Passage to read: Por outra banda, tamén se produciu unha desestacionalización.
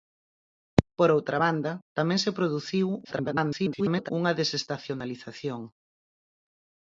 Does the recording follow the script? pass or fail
fail